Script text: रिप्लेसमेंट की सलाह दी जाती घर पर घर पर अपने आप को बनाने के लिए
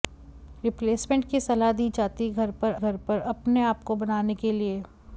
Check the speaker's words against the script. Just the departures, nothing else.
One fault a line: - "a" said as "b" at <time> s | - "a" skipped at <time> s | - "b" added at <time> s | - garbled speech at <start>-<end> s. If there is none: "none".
none